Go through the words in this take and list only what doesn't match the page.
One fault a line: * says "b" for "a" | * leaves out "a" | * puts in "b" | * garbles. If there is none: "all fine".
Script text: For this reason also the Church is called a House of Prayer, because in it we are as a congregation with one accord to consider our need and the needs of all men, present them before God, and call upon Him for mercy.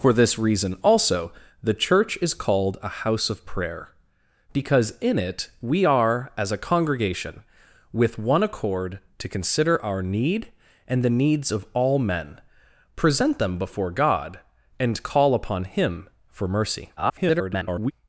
* garbles